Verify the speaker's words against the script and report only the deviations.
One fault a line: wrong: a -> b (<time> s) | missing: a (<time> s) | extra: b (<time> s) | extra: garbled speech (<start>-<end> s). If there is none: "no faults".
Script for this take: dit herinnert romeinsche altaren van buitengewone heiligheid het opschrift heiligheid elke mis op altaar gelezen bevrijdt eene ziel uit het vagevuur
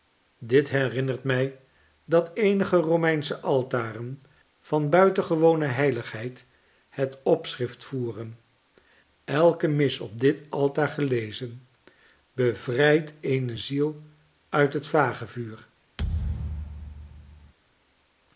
extra: mij dat eenige (1.2 s)
wrong: heiligheid -> voeren (7.8 s)
extra: dit (10.2 s)